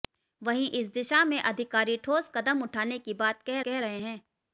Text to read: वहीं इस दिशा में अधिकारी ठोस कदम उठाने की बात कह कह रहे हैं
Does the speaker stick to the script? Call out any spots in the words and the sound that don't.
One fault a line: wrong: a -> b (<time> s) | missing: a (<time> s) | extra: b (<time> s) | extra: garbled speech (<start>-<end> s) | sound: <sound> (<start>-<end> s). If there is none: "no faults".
no faults